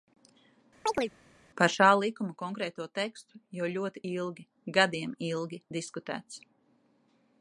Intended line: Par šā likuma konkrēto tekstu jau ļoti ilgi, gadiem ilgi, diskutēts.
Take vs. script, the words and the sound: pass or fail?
fail